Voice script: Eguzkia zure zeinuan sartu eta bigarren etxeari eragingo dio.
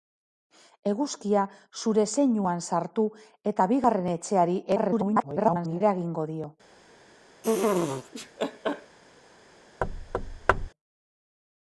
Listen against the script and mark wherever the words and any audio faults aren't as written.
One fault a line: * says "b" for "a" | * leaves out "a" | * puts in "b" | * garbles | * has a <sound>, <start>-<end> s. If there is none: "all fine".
* garbles
* has a laugh, 7.4-9.0 s
* has a thud, 9.8-10.7 s